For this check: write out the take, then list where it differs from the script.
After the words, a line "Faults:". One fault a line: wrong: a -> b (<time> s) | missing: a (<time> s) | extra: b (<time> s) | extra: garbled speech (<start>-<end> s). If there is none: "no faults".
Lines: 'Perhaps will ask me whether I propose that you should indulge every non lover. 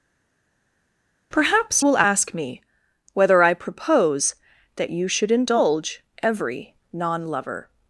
'Perhaps will ask me whether I propose that you should indulge every non lover.
Faults:
no faults